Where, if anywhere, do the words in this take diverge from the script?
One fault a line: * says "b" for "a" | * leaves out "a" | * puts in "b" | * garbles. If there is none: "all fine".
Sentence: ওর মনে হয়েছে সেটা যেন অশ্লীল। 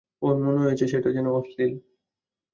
all fine